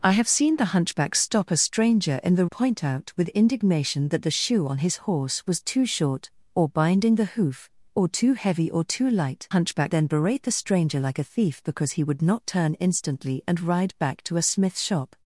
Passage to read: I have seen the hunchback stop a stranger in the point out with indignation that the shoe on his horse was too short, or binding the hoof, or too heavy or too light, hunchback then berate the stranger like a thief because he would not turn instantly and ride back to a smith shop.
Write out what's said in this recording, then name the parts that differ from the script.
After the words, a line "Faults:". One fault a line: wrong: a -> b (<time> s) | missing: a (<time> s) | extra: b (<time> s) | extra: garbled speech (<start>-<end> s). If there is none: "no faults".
I have seen the hunchback stop a stranger in the point out with indignation that the shoe on his horse was too short, or binding the hoof, or too heavy or too light, hunchback then berate the stranger like a thief because he would not turn instantly and ride back to a smith shop.
Faults:
no faults